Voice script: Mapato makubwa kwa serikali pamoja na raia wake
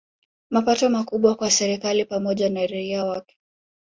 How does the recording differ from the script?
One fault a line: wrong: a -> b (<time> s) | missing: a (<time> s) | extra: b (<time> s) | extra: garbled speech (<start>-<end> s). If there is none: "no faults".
no faults